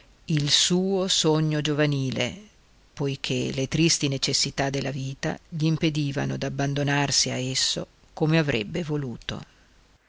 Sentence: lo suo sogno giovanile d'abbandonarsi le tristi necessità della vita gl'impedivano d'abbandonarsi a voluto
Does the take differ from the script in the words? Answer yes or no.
yes